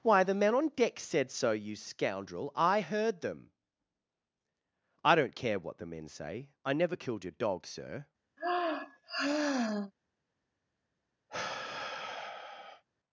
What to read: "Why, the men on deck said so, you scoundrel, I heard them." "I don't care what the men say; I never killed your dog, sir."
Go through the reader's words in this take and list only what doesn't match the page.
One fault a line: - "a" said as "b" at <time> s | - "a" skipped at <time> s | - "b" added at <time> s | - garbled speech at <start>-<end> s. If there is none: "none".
none